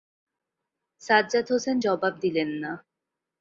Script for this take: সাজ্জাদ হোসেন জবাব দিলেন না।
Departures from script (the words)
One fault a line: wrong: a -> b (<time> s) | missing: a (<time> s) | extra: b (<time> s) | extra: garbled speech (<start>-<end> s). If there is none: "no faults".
no faults